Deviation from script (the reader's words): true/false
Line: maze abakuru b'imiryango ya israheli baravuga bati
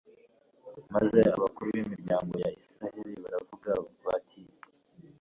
false